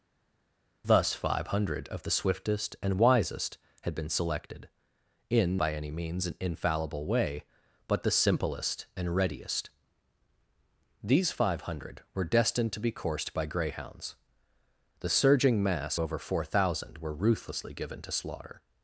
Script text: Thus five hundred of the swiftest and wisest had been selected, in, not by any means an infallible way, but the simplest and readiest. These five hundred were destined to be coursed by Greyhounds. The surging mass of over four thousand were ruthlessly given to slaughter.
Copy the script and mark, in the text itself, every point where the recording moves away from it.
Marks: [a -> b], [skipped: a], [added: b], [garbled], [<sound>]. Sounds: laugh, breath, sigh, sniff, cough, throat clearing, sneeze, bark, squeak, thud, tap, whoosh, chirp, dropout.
Thus five hundred of the swiftest and wisest had been selected, in, [skipped: not] by any means an infallible way, but the simplest and readiest. These five hundred were destined to be coursed by Greyhounds. The surging mass [skipped: of] over four thousand were ruthlessly given to slaughter.